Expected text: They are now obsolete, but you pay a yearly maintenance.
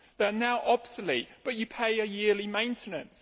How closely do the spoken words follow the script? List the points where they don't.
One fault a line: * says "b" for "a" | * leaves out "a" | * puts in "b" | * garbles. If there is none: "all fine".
all fine